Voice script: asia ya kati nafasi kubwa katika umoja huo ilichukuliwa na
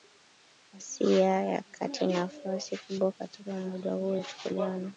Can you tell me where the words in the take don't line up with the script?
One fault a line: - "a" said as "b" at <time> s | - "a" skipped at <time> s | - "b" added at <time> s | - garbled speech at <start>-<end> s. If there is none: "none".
none